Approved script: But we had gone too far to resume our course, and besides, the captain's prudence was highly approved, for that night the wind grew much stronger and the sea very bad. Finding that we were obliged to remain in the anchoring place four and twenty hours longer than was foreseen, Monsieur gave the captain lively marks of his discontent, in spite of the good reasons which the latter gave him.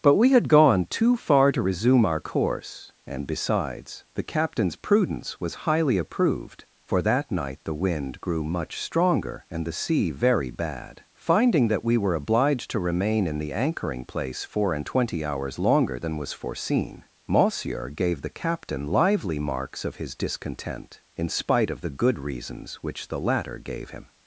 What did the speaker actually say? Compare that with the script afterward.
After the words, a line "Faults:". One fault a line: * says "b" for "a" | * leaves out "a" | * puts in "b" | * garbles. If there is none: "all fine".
But we had gone too far to resume our course, and besides, the captain's prudence was highly approved, for that night the wind grew much stronger and the sea very bad. Finding that we were obliged to remain in the anchoring place four and twenty hours longer than was foreseen, Monsieur gave the captain lively marks of his discontent, in spite of the good reasons which the latter gave him.
Faults:
all fine